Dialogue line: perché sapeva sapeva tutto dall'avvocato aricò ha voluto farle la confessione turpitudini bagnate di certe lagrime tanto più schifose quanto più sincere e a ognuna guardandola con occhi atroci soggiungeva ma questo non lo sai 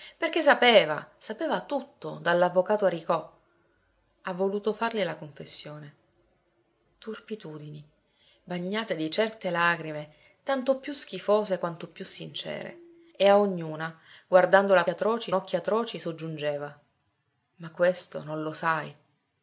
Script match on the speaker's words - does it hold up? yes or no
no